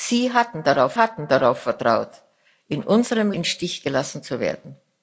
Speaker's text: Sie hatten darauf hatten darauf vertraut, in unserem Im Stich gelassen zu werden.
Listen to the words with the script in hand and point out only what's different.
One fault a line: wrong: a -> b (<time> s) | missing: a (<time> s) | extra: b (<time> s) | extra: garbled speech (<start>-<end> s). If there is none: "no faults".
no faults